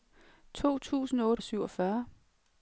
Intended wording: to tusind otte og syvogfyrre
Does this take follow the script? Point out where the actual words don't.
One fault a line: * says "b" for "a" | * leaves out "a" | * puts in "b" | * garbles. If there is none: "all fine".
all fine